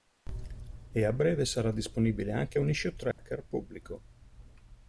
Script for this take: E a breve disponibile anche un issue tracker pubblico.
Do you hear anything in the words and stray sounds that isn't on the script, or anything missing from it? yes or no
yes